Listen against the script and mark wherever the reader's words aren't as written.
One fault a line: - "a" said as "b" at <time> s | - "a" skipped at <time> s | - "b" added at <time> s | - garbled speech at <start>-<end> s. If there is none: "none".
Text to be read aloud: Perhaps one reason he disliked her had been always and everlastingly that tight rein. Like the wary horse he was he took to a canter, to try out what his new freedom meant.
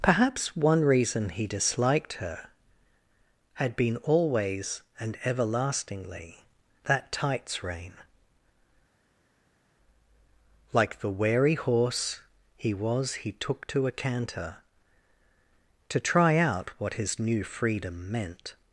- "tight" said as "tights" at 7.1 s